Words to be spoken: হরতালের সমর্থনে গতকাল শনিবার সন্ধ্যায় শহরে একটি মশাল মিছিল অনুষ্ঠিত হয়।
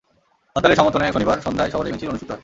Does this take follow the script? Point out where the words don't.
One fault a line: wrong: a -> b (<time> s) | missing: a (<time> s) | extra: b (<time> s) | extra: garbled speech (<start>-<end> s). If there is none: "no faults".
missing: গতকাল (1.1 s)
missing: একটি মশাল (1.9 s)